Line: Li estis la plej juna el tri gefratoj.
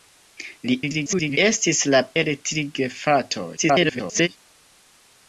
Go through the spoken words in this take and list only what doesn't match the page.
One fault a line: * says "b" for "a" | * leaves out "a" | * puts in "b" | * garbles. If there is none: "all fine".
* garbles
* leaves out "plej juna"
* garbles